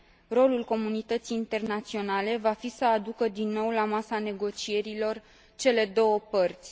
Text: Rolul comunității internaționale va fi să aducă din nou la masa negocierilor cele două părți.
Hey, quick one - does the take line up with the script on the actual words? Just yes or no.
yes